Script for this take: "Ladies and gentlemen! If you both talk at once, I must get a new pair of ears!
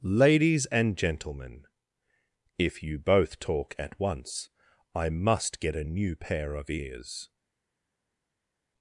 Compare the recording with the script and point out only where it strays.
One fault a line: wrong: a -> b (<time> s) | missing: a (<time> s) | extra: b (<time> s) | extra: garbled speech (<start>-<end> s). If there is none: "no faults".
no faults